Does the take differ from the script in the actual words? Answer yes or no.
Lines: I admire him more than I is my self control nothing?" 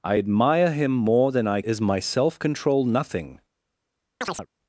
no